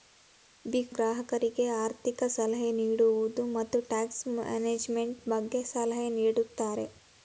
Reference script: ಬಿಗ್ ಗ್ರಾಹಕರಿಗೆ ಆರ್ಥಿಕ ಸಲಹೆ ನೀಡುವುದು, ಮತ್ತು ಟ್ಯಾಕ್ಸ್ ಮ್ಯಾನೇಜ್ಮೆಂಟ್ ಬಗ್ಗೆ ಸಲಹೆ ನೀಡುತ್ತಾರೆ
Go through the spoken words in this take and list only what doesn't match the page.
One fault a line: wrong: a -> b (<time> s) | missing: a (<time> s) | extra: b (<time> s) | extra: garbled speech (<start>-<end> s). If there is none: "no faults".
no faults